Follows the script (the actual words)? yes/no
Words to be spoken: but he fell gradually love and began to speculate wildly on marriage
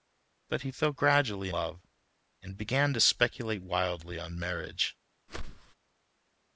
yes